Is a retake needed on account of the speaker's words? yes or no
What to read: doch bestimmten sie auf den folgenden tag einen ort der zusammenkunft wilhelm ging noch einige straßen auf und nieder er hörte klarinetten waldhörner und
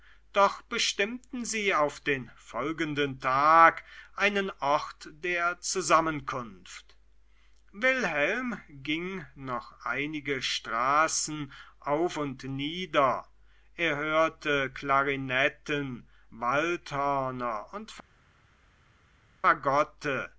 no